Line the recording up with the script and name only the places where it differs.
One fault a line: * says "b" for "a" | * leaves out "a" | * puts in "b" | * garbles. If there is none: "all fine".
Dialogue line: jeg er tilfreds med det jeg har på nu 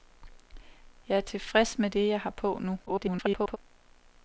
* garbles